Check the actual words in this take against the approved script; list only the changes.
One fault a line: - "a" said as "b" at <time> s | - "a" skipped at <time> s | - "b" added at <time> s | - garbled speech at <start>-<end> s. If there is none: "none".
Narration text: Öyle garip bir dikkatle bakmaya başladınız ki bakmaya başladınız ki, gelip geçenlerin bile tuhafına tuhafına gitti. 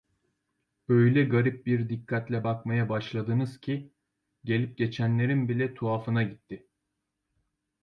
- "bakmaya başladınız ki" skipped at 3.9 s
- "tuhafına" skipped at 6.2 s